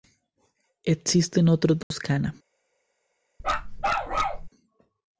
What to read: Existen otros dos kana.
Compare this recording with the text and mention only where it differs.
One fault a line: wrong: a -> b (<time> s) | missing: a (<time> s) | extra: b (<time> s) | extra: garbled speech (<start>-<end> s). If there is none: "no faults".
no faults